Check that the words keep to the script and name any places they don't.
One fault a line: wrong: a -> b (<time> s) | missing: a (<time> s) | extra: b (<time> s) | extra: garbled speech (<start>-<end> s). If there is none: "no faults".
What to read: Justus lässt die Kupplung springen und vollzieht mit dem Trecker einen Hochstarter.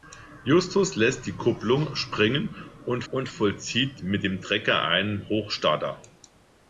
extra: und (3.1 s)